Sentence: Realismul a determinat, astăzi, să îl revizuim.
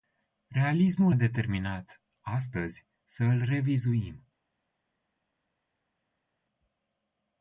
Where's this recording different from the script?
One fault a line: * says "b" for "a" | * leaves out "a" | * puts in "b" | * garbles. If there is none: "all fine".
all fine